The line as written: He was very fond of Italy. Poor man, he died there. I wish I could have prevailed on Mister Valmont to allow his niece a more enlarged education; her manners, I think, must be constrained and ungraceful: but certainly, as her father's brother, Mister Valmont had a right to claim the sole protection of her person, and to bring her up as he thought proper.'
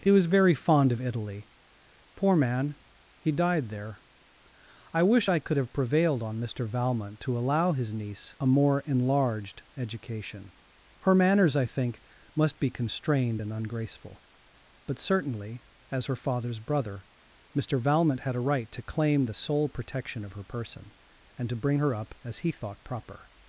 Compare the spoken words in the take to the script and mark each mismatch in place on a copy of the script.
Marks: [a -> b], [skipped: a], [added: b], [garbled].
He was very fond of Italy. Poor man, he died there. I wish I could have prevailed on Mister Valmont to allow his niece a more enlarged education; her manners, I think, must be constrained and ungraceful: but certainly, as her father's brother, Mister Valmont had a right to claim the sole protection of her person, and to bring her up as he thought proper.'